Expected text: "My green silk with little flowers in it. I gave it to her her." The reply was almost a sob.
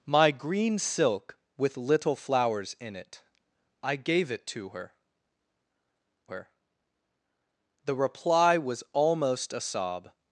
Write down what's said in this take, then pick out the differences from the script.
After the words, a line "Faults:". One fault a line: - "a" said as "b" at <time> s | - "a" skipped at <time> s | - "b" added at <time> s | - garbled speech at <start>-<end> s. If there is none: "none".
"My green silk with little flowers in it. I gave it to her her." The reply was almost a sob.
Faults:
none